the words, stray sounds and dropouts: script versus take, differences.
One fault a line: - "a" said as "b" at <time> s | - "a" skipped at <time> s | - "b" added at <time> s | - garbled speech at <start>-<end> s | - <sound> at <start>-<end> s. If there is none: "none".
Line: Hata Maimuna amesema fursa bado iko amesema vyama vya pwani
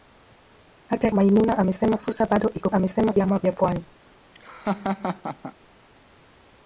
- laugh at 4.3-5.5 s